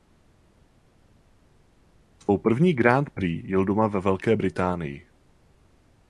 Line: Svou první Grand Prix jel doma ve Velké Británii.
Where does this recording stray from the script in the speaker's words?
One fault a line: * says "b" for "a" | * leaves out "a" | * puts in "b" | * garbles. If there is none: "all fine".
all fine